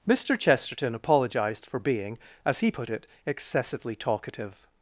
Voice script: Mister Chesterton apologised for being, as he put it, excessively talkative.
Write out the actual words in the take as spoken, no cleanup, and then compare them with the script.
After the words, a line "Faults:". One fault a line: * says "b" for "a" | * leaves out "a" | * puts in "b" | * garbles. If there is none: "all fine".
Mister Chesterton apologised for being, as he put it, excessively talkative.
Faults:
all fine